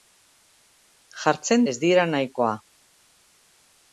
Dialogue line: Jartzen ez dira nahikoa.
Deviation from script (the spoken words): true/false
false